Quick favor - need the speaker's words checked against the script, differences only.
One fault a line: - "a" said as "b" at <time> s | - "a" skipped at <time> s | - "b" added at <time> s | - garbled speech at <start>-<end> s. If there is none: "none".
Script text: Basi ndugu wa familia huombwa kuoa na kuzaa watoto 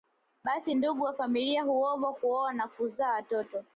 none